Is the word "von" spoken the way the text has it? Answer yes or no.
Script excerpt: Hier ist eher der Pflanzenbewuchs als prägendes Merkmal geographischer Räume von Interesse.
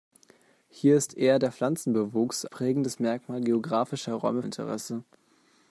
no